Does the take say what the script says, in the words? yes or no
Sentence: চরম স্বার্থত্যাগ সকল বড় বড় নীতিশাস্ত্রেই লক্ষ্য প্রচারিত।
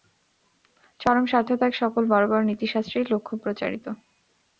yes